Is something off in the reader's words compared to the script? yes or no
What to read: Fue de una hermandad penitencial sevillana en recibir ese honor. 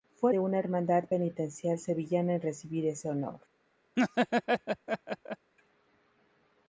no